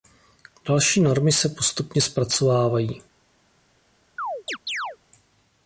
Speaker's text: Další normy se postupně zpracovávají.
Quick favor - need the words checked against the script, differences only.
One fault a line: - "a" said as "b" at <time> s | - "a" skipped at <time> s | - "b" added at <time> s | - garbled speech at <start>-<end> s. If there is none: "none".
none